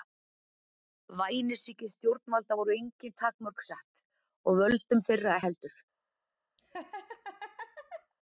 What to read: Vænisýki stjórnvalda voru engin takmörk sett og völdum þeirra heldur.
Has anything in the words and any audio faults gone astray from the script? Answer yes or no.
yes